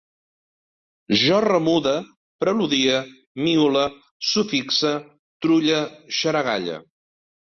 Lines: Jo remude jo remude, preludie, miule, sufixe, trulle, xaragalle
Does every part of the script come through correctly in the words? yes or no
no